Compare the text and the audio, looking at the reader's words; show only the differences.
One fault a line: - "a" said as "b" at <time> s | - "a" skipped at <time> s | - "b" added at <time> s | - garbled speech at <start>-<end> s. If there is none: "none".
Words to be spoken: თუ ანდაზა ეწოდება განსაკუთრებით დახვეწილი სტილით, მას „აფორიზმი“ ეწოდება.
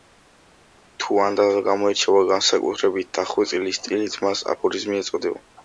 - "ეწოდება" said as "გამოირჩევა" at 1.7 s